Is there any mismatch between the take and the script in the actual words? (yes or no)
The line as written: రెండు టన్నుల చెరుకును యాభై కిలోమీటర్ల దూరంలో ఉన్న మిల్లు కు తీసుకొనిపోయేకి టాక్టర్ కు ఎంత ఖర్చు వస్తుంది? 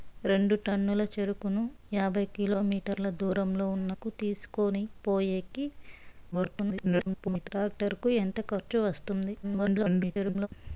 yes